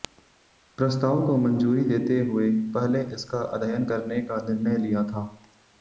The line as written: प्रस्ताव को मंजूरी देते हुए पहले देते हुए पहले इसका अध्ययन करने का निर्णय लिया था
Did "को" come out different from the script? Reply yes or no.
no